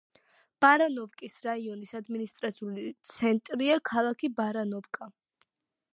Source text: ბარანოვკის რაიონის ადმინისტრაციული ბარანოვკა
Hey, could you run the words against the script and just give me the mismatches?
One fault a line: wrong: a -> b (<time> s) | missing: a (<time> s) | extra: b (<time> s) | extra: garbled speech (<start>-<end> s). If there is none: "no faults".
extra: ცენტრია ქალაქი (3.1 s)